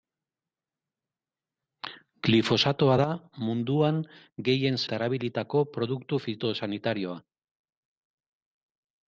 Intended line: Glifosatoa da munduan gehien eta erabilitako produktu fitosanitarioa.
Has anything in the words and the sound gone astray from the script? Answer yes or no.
no